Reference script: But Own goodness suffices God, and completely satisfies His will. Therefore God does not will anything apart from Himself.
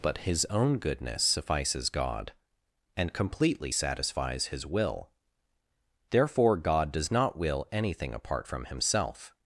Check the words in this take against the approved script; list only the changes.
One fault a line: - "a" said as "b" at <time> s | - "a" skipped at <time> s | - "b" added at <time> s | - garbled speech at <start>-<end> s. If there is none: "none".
- "His" added at 0.2 s